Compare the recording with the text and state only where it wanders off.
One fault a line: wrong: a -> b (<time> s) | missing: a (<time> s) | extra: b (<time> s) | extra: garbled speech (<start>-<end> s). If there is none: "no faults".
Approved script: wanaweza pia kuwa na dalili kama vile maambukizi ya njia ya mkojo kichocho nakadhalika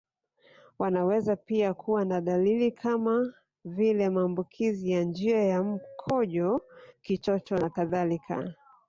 no faults